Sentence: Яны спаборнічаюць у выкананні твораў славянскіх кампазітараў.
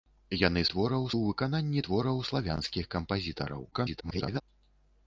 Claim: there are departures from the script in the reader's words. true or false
true